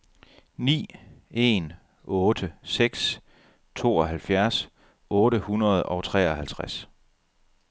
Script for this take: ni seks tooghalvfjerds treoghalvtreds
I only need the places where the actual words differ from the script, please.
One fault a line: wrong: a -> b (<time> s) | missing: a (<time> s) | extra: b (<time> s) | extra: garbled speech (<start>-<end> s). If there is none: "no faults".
extra: en otte (1.3 s)
extra: otte hundrede og (5.1 s)